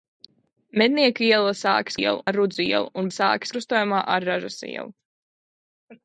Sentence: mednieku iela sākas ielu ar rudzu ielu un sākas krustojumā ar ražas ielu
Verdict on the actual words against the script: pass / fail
pass